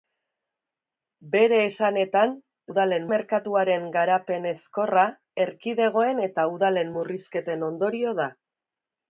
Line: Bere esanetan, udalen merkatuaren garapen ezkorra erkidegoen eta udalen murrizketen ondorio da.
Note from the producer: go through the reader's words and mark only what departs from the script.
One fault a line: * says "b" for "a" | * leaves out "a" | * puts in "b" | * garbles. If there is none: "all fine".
all fine